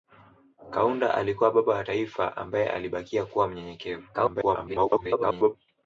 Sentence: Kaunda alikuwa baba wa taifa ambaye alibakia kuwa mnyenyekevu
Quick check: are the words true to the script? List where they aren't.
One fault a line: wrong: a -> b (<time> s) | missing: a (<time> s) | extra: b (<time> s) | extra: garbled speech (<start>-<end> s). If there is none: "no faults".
extra: garbled speech (4.1-5.5 s)